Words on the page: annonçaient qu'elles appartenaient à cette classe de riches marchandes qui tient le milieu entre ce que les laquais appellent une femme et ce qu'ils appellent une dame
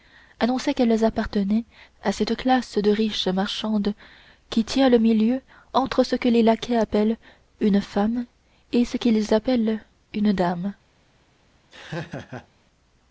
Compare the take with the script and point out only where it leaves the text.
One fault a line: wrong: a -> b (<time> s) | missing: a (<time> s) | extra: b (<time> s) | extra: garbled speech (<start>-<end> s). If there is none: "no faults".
no faults